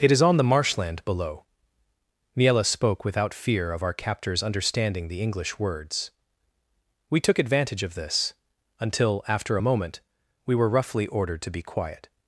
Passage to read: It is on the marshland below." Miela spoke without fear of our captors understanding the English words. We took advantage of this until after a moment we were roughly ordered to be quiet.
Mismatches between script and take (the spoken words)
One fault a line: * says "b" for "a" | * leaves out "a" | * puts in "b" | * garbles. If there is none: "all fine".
all fine